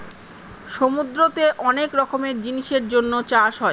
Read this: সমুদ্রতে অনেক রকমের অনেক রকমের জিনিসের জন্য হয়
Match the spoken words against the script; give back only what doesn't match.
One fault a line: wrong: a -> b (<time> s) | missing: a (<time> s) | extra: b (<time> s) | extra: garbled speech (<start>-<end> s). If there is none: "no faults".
missing: অনেক রকমের (2.3 s)
extra: চাষ (3.3 s)